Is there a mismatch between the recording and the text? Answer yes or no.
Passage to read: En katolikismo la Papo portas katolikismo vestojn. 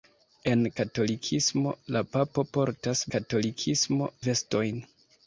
no